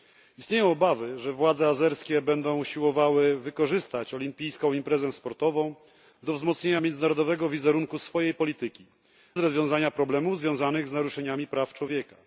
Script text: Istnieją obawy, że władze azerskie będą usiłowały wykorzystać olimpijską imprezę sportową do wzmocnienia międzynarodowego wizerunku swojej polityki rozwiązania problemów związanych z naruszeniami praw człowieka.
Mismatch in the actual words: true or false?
false